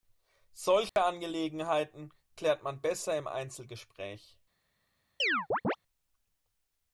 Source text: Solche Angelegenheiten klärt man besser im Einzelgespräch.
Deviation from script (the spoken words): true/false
false